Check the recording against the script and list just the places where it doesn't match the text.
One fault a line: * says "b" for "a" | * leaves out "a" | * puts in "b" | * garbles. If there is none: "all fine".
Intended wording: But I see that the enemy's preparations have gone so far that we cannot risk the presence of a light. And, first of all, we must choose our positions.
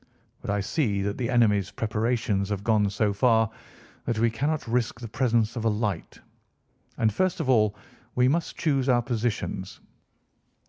all fine